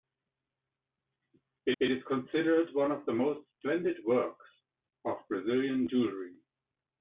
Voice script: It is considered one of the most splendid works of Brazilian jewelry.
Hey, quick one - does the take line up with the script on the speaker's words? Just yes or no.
no